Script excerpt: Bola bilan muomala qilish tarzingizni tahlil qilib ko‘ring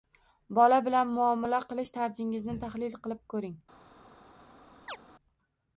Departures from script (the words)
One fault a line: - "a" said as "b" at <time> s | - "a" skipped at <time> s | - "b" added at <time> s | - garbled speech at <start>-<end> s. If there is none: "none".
none